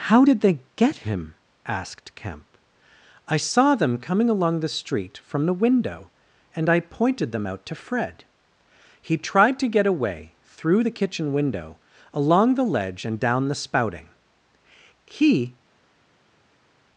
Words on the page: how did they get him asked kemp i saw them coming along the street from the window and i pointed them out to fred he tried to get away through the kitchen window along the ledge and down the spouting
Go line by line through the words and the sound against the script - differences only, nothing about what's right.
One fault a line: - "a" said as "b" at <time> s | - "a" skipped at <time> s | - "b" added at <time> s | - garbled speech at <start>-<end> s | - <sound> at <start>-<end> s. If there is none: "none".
- "he" added at 15.0 s